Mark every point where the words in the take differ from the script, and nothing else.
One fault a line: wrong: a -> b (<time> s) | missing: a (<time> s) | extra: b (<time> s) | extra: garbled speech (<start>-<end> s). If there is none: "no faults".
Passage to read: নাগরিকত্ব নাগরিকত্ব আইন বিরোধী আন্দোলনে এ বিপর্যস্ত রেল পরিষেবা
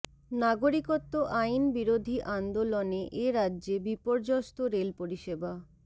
missing: নাগরিকত্ব (1.1 s)
extra: রাজ্যে (3.4 s)